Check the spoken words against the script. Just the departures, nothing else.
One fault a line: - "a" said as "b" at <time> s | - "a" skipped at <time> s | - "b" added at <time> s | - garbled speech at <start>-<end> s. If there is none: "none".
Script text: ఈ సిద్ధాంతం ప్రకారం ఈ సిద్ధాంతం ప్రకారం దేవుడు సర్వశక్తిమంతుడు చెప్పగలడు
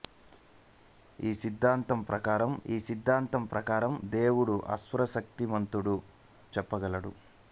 none